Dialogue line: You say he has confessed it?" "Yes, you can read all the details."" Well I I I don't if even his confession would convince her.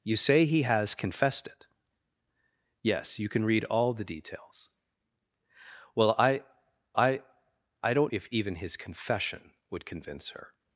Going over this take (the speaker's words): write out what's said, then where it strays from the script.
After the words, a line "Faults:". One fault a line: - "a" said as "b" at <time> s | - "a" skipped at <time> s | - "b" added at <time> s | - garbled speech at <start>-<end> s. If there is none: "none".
You say he has confessed it?" "Yes, you can read all the details."" Well I I I don't if even his confession would convince her.
Faults:
none